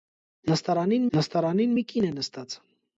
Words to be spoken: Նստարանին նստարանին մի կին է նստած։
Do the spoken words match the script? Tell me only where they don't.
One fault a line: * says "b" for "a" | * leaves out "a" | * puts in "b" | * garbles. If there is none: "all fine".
all fine